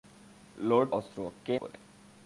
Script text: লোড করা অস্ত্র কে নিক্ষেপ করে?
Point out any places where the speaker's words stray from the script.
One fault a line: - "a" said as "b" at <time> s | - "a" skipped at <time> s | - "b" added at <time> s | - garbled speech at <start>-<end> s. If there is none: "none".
- "করা" skipped at 0.9 s
- "নিক্ষেপ" skipped at 1.5 s